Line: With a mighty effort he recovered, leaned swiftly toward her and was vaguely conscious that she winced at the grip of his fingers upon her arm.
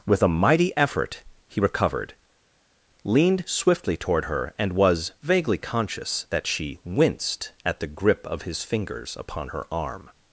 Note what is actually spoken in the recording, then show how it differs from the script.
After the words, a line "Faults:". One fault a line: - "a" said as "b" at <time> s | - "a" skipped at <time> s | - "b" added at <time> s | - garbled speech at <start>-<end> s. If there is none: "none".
With a mighty effort he recovered, leaned swiftly toward her and was vaguely conscious that she winced at the grip of his fingers upon her arm.
Faults:
none